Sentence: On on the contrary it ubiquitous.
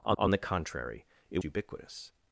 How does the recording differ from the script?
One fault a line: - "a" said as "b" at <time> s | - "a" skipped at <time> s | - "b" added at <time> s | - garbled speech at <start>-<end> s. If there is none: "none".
none